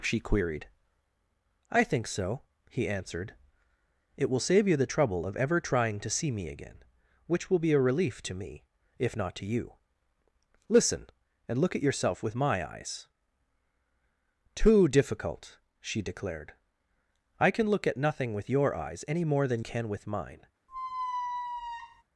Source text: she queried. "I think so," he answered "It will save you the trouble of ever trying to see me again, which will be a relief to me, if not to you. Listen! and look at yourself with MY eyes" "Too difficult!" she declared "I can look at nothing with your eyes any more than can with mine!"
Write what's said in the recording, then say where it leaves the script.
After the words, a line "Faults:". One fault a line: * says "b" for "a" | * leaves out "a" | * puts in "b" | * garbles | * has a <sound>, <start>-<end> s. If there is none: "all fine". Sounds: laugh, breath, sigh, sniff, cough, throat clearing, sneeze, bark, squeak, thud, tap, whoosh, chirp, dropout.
she queried. "I think so," he answered "It will save you the trouble of ever trying to see me again, which will be a relief to me, if not to you. Listen! and look at yourself with MY eyes" "Too difficult!" she declared "I can look at nothing with your eyes any more than can with mine!"
Faults:
* has a squeak, 20.7-22.0 s